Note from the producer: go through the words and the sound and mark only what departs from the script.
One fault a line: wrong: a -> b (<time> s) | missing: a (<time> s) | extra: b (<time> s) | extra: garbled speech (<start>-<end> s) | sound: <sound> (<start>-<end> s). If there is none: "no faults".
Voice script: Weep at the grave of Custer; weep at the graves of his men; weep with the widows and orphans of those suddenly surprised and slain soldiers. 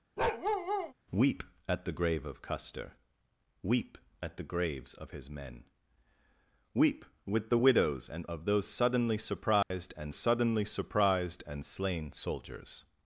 sound: bark (0.2-0.9 s)
missing: orphans (8.3 s)
sound: dropout (9.6-9.7 s)
extra: suddenly surprised and (10.1 s)